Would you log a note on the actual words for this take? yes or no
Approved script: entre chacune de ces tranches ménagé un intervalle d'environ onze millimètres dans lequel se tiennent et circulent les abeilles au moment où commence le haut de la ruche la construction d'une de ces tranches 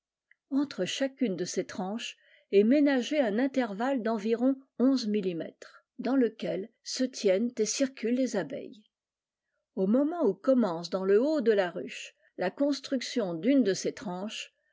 yes